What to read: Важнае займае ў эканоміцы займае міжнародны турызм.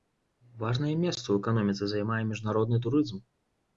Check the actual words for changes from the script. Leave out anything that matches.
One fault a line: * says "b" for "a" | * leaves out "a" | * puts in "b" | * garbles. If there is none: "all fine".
* says "месца" for "займае"